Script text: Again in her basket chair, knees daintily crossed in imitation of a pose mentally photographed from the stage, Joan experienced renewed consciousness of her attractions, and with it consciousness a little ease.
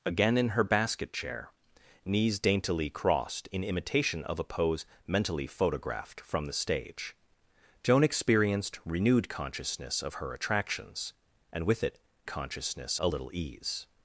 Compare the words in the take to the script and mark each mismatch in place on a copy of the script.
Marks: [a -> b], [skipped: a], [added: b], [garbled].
Again in her basket chair, knees daintily crossed in imitation of a pose mentally photographed from the stage, Joan experienced renewed consciousness of her attractions, and with it consciousness a little ease.